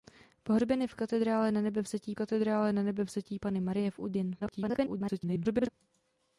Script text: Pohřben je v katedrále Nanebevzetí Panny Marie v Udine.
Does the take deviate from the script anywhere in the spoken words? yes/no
yes